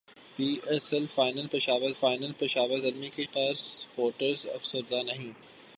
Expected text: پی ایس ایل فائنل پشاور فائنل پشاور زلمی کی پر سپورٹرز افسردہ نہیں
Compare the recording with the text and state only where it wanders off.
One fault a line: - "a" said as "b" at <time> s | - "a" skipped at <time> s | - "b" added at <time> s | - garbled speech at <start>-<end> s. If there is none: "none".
none